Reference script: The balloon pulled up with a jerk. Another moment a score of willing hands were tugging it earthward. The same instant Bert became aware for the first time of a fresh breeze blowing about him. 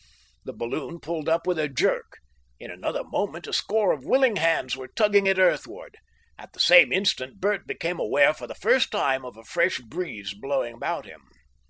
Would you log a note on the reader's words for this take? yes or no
yes